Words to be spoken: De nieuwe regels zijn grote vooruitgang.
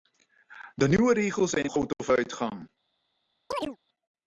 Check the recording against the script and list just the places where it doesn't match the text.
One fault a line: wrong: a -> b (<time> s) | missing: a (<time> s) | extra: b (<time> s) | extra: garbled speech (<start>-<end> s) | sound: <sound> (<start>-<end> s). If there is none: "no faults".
sound: chirp (3.5-3.8 s)